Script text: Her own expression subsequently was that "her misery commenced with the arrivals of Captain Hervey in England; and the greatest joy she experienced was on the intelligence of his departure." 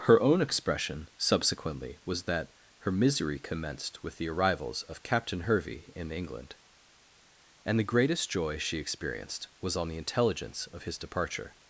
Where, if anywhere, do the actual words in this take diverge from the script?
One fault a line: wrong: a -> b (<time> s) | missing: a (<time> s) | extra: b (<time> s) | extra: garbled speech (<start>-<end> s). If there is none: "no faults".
no faults